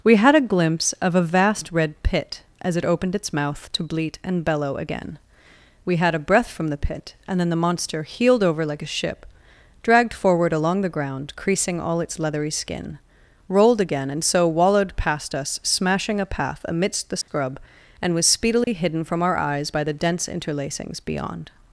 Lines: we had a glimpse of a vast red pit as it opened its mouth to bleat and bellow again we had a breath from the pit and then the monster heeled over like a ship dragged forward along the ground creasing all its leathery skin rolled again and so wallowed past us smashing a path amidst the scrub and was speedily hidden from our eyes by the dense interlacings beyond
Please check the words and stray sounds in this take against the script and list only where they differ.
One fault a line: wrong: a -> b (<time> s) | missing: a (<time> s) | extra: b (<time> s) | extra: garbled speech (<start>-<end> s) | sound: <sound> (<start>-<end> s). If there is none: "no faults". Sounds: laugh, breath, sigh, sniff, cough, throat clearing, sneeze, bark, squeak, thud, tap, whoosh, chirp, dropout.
sound: dropout (17.2-17.3 s)
sound: dropout (18.6-18.7 s)